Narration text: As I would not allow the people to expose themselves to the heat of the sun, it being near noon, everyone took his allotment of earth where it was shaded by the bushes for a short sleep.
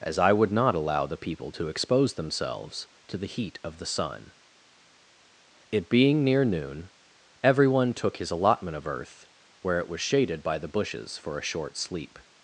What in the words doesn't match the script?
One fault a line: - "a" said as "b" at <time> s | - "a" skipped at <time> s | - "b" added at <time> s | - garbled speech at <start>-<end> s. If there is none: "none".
none